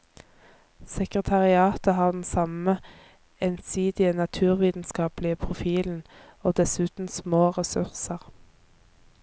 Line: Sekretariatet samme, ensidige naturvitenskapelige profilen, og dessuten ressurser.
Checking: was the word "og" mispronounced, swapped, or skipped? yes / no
no